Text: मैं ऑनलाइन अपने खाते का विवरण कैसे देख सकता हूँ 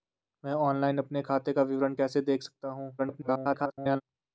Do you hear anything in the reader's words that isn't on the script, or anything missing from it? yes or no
yes